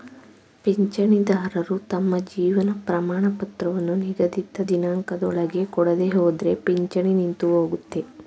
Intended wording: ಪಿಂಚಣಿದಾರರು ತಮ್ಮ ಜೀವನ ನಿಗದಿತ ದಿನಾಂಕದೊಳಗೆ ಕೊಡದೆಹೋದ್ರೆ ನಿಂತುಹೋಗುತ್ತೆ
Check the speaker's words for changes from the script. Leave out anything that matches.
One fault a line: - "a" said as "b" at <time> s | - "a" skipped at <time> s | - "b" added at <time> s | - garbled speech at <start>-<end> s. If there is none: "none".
- "ಪ್ರಮಾಣಪತ್ರವನ್ನು" added at 2.9 s
- "ಪಿಂಚಣಿ" added at 6.6 s